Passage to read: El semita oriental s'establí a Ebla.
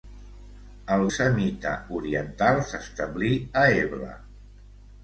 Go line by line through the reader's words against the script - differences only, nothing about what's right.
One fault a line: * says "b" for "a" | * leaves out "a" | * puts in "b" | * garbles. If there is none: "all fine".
all fine